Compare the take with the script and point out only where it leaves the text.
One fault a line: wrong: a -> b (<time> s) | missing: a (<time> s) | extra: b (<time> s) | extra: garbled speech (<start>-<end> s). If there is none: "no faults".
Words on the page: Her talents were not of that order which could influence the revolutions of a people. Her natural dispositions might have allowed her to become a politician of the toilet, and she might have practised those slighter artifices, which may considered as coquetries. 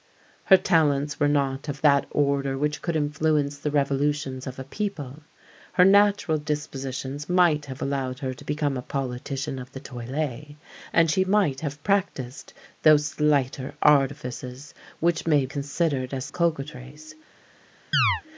no faults